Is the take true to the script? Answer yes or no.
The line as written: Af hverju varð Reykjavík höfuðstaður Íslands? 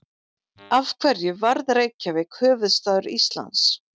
yes